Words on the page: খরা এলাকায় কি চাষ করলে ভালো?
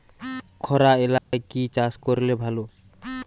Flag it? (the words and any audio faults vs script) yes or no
yes